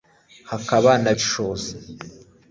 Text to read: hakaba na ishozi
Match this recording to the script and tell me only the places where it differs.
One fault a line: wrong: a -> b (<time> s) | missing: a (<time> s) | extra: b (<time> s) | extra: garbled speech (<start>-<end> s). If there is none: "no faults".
no faults